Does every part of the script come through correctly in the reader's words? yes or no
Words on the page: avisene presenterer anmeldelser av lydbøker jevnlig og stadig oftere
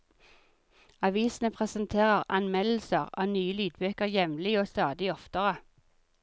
no